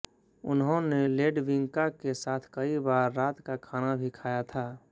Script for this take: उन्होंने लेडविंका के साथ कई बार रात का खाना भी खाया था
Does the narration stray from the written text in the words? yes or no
no